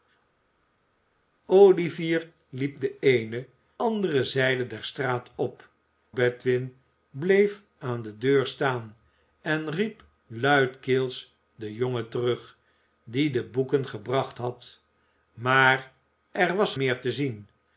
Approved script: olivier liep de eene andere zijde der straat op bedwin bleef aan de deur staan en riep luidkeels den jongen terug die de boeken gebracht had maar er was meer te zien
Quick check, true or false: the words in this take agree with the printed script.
true